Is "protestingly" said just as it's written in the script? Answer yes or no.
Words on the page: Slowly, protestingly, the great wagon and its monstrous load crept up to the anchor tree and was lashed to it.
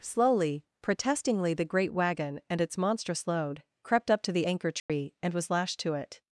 yes